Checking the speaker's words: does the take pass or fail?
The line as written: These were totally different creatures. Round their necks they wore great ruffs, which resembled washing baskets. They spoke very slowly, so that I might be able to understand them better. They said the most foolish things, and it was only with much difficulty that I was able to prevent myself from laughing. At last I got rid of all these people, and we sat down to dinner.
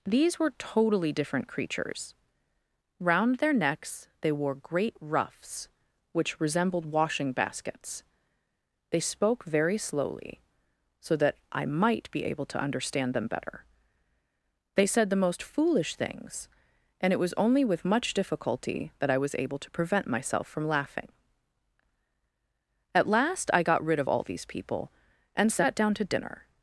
fail